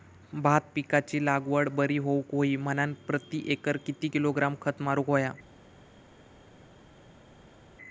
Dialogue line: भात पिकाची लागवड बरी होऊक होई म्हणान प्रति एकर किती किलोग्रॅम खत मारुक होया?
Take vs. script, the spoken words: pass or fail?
pass